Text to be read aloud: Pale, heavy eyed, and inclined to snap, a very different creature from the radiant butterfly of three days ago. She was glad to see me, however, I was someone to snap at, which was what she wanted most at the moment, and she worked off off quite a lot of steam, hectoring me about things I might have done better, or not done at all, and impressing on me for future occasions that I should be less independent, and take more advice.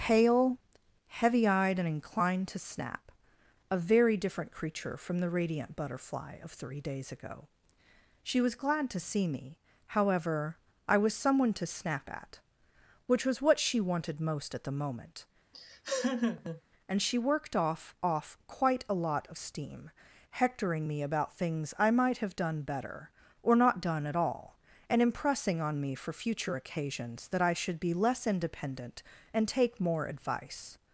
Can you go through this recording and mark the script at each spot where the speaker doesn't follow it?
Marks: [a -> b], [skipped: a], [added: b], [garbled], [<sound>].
Pale, heavy eyed, and inclined to snap, a very different creature from the radiant butterfly of three days ago. She was glad to see me, however, I was someone to snap at, which was what she wanted most at the moment, [laugh] and she worked off off quite a lot of steam, hectoring me about things I might have done better, or not done at all, and impressing on me for future occasions that I should be less independent, and take more advice.